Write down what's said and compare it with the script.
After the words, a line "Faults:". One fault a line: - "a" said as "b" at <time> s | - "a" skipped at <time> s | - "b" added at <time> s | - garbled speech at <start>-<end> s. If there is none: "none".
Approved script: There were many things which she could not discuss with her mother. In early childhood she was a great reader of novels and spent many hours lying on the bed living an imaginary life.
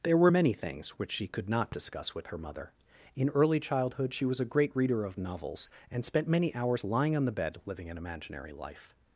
There were many things which she could not discuss with her mother. In early childhood she was a great reader of novels and spent many hours lying on the bed living an imaginary life.
Faults:
none